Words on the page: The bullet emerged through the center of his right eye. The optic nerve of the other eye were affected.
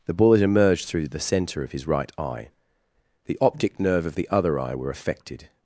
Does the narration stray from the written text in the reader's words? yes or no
no